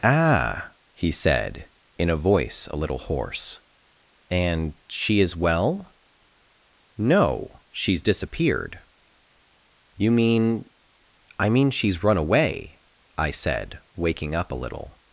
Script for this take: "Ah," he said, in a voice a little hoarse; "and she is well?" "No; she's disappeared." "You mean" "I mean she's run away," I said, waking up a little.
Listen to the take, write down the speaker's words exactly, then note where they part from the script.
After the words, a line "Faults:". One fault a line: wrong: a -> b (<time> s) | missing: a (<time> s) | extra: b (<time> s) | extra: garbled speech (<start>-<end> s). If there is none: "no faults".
"Ah," he said, in a voice a little hoarse; "and she is well?" "No; she's disappeared." "You mean" "I mean she's run away," I said, waking up a little.
Faults:
no faults